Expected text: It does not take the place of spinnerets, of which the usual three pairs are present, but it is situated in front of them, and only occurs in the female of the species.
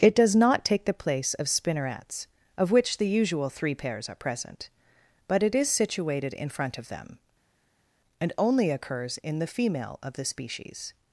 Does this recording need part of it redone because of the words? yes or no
no